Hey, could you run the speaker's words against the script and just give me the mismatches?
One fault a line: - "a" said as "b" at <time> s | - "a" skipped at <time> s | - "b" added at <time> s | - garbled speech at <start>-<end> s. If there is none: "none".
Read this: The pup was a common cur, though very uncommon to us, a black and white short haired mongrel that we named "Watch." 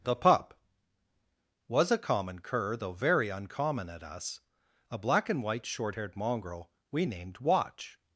- "to" said as "at" at 3.9 s
- "that" skipped at 6.7 s